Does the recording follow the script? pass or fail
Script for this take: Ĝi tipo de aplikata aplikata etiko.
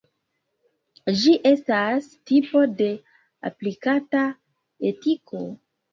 fail